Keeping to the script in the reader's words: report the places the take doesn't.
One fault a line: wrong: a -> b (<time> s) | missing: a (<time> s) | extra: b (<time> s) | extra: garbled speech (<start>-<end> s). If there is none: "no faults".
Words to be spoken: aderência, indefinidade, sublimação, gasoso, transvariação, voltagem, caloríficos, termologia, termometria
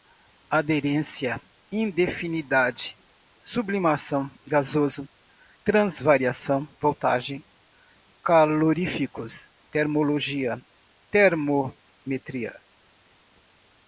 no faults